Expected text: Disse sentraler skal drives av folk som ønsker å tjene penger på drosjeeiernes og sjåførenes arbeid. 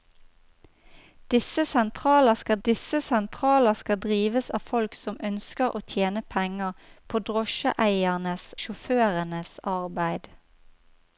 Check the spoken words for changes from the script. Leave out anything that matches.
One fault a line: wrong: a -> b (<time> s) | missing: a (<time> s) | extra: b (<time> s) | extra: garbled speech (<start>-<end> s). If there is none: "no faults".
extra: disse sentraler skal (2.7 s)
missing: og (8.5 s)